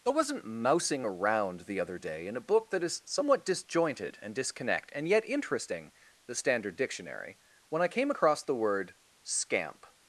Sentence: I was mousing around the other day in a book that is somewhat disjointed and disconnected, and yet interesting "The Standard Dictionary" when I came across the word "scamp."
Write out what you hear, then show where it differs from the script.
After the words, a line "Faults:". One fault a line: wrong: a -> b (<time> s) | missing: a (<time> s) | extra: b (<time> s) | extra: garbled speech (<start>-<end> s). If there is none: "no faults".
I wasn't mousing around the other day in a book that is somewhat disjointed and disconnect, and yet interesting "The Standard Dictionary" when I came across the word "scamp."
Faults:
wrong: was -> wasn't (0.1 s)
wrong: disconnected -> disconnect (4.3 s)